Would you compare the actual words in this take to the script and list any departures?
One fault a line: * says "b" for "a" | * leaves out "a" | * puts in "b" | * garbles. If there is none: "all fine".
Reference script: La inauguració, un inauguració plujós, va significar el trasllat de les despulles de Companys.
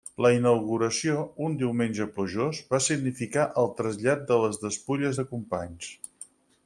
* says "diumenge" for "inauguració"